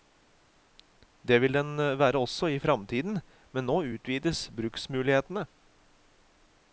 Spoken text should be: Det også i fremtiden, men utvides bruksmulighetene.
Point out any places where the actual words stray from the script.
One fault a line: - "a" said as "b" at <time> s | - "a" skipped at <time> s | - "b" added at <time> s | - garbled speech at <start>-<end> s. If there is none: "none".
- "vil den være" added at 1.4 s
- "nå" added at 3.7 s